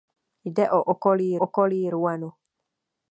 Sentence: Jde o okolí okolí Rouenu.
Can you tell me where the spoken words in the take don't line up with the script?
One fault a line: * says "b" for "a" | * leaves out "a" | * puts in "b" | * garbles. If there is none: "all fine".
all fine